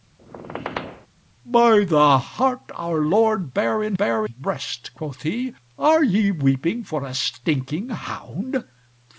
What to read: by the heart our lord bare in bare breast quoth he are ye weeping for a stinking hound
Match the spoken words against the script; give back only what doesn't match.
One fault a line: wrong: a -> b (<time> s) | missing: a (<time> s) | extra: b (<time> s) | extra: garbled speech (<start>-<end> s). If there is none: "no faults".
no faults